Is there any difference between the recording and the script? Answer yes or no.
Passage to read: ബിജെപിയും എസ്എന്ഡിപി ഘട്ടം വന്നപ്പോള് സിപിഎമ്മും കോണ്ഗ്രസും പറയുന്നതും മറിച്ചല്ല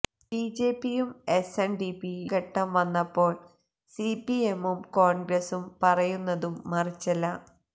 no